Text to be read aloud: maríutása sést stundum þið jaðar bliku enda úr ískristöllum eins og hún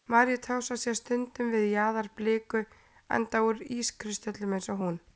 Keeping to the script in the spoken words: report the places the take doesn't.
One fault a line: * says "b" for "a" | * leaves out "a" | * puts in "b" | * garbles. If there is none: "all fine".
* says "við" for "þið"